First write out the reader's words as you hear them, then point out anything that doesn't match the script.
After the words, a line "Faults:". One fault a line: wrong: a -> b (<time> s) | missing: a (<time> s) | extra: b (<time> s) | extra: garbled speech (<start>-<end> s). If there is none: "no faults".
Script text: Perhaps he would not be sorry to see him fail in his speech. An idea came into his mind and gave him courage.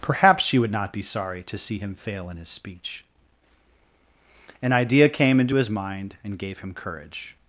Perhaps she would not be sorry to see him fail in his speech. An idea came into his mind and gave him courage.
Faults:
wrong: he -> she (0.4 s)